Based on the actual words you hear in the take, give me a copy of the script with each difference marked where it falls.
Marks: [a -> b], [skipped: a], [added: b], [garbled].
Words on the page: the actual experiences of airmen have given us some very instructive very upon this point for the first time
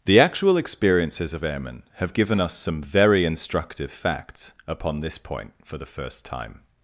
the actual experiences of airmen have given us some very instructive [very -> facts] upon this point for the first time